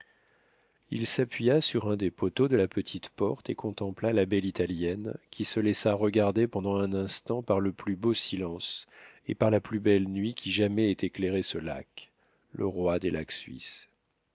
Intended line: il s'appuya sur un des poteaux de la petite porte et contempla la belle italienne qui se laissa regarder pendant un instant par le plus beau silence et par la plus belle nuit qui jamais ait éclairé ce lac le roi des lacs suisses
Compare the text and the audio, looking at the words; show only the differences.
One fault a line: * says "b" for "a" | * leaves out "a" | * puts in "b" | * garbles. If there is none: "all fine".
all fine